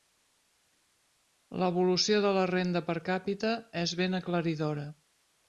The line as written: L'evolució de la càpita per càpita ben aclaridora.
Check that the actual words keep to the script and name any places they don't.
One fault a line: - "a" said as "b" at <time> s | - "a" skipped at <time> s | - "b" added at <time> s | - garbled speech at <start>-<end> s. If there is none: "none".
- "càpita" said as "renda" at 2.5 s
- "és" added at 3.8 s